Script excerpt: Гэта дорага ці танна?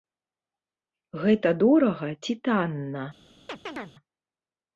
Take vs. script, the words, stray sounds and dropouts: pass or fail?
fail